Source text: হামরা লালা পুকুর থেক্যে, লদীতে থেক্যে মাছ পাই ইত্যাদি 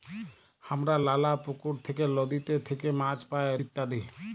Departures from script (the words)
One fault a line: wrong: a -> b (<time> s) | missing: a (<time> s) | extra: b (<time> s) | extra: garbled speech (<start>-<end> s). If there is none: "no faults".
no faults